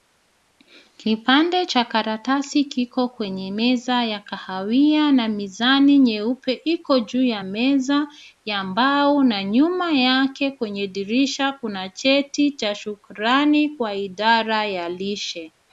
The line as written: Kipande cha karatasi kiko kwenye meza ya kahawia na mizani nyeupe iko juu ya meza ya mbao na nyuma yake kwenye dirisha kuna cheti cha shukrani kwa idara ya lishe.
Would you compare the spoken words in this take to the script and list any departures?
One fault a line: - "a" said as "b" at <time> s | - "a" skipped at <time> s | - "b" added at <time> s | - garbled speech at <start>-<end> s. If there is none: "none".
none